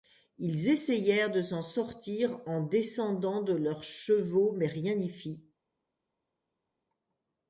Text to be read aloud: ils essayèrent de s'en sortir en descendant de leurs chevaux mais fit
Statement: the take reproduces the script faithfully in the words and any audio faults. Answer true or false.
false